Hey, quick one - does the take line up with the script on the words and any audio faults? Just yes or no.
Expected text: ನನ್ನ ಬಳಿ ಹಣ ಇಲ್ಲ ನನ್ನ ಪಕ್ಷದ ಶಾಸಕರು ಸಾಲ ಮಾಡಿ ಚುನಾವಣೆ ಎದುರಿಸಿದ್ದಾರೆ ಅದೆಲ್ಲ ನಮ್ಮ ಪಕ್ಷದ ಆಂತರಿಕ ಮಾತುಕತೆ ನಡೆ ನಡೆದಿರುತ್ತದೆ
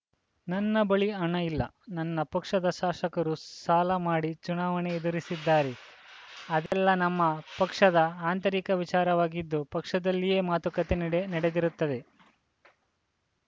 no